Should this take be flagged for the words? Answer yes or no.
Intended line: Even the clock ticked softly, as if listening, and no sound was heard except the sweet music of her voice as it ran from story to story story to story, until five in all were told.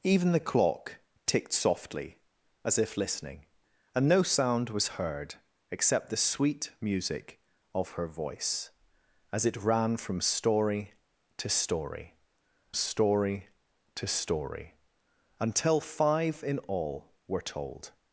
no